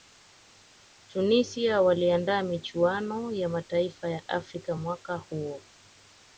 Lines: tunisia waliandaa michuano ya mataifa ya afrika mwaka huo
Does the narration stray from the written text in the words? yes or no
no